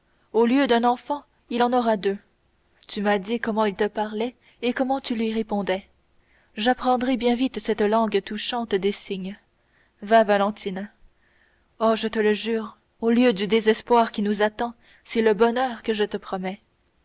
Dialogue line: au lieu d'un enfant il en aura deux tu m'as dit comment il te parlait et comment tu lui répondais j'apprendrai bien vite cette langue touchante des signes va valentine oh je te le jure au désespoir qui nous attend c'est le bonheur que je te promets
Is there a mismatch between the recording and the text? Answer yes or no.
yes